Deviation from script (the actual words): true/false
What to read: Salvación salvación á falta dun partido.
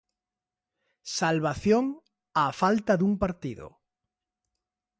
true